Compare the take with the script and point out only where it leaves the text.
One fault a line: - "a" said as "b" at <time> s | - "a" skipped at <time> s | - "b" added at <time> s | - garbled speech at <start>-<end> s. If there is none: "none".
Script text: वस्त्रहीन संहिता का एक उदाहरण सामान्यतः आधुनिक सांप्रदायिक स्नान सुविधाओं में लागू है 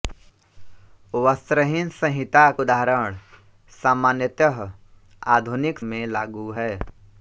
- "का एक" skipped at 2.5 s
- "सांप्रदायिक स्नान सुविधाओं" skipped at 5.8 s